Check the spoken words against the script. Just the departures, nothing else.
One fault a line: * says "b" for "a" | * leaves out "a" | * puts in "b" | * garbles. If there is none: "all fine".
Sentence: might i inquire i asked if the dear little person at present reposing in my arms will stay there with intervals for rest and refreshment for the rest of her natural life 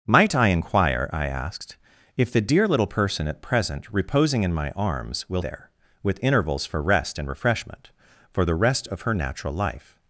* leaves out "stay"